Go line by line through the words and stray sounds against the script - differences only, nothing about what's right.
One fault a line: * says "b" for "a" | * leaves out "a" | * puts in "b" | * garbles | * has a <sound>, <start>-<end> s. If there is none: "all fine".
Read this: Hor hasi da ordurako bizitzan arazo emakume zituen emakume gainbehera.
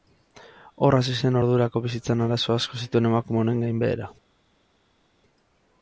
* says "zen" for "da"
* says "asko" for "emakume"
* puts in "honen"